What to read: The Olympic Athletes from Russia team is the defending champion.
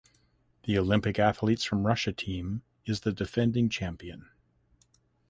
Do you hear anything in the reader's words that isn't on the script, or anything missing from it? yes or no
no